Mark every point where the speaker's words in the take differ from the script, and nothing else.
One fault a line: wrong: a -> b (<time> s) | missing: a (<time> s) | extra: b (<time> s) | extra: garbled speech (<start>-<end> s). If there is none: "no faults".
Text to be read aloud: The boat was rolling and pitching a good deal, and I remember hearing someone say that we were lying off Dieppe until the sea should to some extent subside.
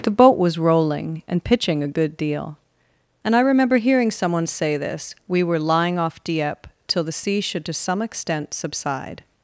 wrong: that -> this (4.8 s)
wrong: until -> till (6.9 s)